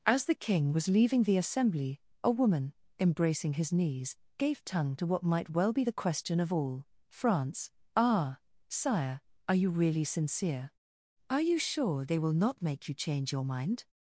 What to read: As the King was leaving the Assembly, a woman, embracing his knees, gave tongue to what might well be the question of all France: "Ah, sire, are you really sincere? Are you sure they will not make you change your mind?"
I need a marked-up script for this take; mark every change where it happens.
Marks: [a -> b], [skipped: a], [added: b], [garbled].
As the King was leaving the Assembly, a woman, embracing his knees, gave tongue to what might well be the question of all France: "Ah, sire, are you really sincere? Are you sure they will not make you change your mind?"